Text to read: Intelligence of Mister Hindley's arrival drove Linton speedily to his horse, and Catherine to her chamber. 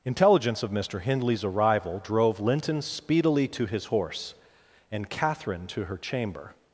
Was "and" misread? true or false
false